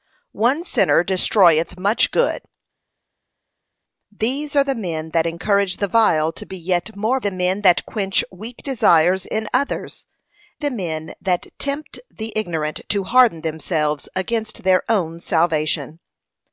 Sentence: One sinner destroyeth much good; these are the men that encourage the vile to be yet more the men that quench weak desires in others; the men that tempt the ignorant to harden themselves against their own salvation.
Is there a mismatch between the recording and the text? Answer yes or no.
no